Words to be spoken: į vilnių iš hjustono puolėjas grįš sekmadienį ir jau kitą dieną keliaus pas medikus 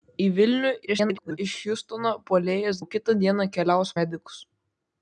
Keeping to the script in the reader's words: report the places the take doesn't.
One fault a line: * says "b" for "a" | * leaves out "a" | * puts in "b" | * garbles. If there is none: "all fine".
* garbles
* leaves out "grįš sekmadienį ir"
* leaves out "pas"